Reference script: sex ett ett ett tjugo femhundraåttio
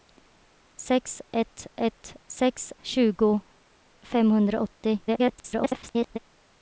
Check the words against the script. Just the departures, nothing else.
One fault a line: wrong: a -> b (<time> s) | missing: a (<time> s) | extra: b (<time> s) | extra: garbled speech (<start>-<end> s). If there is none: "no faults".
wrong: ett -> sex (2.3 s)
extra: garbled speech (5.1-6.2 s)